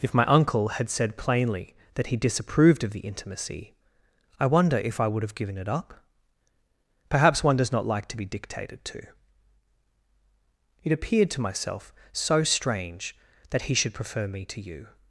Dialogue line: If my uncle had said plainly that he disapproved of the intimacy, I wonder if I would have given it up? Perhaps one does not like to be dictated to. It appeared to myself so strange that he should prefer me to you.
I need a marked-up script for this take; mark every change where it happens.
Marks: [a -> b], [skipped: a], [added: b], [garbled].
If my uncle had said plainly that he disapproved of the intimacy, I wonder if I would have given it up? Perhaps one does not like to be dictated to. It appeared to myself so strange that he should prefer me to you.